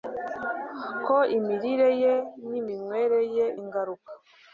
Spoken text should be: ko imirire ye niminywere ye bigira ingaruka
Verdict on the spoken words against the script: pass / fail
fail